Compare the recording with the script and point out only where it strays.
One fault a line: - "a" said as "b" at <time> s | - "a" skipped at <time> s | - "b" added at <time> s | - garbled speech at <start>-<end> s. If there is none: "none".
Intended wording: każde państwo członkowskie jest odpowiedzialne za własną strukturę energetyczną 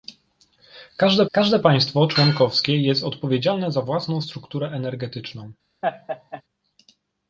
- "każde" added at 1.3 s